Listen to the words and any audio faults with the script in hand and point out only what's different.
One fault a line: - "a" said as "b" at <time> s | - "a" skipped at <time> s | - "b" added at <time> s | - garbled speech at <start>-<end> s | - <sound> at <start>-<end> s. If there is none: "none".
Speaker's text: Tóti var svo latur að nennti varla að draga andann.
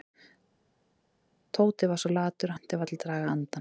none